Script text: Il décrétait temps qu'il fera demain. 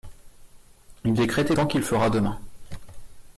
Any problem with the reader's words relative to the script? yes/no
no